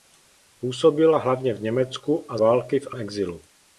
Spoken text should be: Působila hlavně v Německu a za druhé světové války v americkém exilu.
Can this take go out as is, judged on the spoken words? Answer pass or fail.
fail